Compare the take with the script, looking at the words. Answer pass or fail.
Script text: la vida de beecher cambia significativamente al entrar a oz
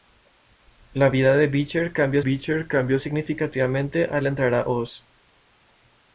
fail